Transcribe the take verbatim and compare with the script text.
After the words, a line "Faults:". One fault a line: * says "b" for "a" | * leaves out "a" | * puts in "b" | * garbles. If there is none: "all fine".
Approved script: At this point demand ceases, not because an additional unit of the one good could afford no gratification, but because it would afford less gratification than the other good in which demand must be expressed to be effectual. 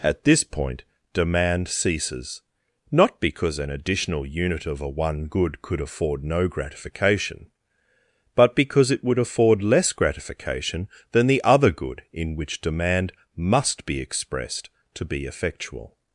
At this point demand ceases, not because an additional unit of a one good could afford no gratification, but because it would afford less gratification than the other good in which demand must be expressed to be effectual.
Faults:
* says "a" for "the"